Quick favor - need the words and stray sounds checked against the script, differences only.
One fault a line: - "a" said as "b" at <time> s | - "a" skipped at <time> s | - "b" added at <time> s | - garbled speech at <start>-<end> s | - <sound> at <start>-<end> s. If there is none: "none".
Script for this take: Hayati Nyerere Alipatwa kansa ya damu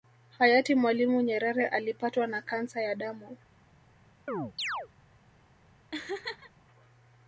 - "Mwalimu" added at 0.8 s
- "na" added at 2.3 s
- chirp at 4.3-4.9 s
- laugh at 5.9-6.5 s